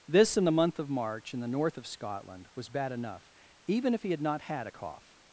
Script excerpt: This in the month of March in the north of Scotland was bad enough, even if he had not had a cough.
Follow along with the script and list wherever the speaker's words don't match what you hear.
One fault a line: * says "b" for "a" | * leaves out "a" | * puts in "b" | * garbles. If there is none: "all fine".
all fine